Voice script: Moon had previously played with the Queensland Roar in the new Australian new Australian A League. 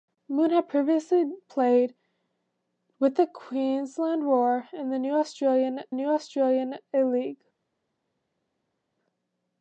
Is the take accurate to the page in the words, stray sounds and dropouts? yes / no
yes